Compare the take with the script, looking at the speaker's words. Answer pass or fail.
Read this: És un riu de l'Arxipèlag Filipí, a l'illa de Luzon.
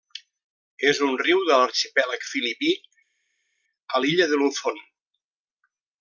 pass